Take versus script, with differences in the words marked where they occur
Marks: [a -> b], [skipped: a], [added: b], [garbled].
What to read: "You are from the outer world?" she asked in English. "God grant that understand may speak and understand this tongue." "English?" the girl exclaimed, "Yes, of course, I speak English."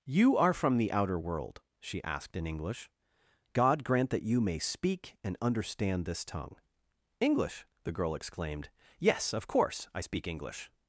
"You are from the outer world?" she asked in English. "God grant that [understand -> you] may speak and understand this tongue." "English?" the girl exclaimed, "Yes, of course, I speak English."